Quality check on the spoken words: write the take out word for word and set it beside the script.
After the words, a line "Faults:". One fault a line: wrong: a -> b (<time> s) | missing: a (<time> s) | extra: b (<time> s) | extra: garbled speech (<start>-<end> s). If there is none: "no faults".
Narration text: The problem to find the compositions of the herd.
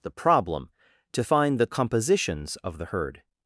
The problem to find the compositions of the herd.
Faults:
no faults